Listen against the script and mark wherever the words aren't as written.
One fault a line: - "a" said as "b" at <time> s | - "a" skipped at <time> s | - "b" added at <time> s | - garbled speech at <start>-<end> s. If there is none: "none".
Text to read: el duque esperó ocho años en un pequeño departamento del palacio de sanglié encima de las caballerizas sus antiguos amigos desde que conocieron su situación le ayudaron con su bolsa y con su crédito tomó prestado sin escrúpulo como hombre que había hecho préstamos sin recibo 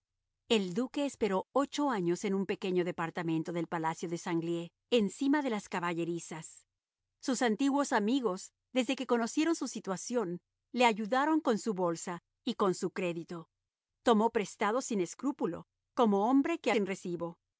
- "había hecho préstamos" skipped at 16.7 s